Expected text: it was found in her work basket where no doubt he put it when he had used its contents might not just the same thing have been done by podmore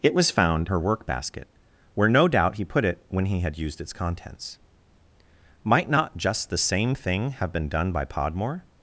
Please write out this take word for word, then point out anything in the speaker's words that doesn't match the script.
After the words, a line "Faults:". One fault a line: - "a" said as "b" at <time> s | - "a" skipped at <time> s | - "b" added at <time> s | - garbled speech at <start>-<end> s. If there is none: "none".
it was found her work basket where no doubt he put it when he had used its contents might not just the same thing have been done by podmore
Faults:
- "in" skipped at 0.7 s